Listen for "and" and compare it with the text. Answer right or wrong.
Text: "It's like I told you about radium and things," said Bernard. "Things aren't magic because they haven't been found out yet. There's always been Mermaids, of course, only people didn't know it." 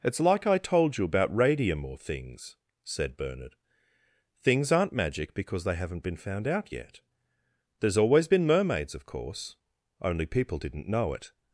wrong